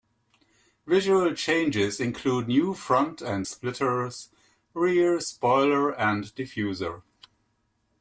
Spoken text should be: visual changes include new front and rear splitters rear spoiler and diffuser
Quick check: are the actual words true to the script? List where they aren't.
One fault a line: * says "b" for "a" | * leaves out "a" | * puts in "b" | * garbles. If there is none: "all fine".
* leaves out "rear"